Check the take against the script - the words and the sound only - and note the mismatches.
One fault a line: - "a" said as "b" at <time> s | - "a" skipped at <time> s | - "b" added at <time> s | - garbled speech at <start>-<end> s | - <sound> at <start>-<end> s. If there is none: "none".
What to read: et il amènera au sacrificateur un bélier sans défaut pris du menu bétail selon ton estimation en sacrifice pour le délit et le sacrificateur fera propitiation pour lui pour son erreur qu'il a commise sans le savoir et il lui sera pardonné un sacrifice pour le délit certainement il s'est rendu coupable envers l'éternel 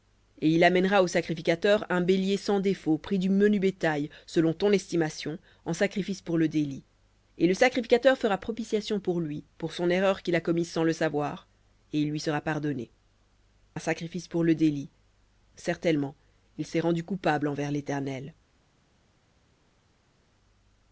none